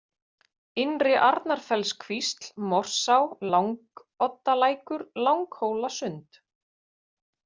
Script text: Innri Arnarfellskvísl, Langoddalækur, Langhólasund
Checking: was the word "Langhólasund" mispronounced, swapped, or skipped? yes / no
no